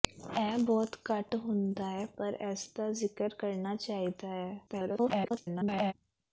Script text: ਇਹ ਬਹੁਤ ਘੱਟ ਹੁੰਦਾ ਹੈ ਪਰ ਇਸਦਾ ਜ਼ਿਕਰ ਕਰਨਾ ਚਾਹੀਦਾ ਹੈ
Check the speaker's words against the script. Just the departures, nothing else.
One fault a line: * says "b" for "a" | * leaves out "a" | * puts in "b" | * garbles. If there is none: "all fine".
* garbles